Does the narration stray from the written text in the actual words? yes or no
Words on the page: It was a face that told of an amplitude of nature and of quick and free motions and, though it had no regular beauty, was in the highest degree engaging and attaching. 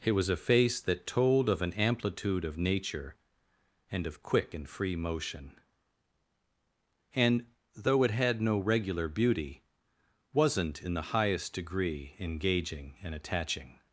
yes